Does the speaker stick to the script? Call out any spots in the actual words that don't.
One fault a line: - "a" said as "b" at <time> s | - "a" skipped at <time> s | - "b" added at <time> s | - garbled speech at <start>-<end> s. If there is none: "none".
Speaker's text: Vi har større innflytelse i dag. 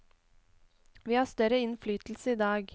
none